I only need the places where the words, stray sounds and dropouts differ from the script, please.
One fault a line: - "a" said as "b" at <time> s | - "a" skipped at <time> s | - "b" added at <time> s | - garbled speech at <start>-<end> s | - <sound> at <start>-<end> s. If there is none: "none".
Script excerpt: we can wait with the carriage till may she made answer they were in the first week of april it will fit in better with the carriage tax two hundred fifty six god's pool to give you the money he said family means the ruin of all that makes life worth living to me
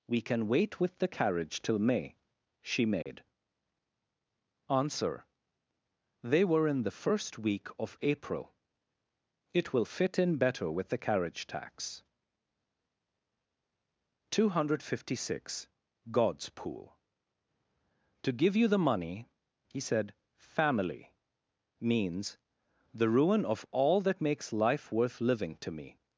- dropout at 3.0-3.1 s